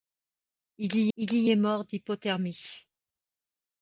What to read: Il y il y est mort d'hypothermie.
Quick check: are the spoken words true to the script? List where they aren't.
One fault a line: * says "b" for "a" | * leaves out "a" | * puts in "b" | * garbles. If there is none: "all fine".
all fine